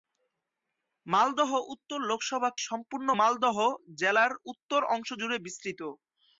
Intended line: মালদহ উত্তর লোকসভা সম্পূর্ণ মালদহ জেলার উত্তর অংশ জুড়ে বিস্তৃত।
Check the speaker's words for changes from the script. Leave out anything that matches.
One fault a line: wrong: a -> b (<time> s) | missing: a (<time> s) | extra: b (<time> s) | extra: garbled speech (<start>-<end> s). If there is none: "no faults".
no faults